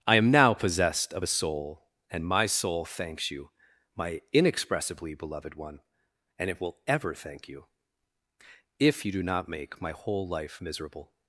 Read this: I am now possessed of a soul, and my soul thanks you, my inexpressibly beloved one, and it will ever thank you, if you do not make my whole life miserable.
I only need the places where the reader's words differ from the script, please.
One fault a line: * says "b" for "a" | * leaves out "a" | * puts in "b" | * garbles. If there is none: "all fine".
all fine